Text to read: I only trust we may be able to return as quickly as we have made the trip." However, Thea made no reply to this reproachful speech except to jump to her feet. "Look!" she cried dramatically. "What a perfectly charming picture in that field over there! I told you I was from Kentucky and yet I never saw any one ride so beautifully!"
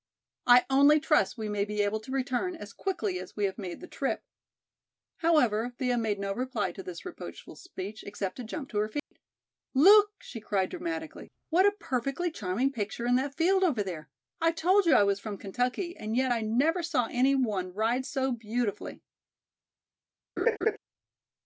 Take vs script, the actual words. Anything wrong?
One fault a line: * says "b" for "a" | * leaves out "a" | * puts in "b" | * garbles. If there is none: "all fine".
all fine